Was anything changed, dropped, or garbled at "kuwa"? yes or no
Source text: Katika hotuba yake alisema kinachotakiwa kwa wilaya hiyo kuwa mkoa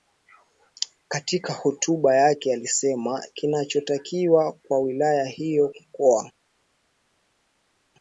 yes